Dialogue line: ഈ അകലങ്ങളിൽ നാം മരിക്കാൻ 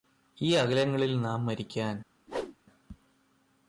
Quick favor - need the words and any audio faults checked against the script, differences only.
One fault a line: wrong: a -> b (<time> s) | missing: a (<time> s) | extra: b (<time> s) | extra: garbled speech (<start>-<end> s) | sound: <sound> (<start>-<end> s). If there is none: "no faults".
sound: whoosh (2.3-2.6 s)